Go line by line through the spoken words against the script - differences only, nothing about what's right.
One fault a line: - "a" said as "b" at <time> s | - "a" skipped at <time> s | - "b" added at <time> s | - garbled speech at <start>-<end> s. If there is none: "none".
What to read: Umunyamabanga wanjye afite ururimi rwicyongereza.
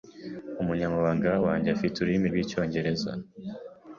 none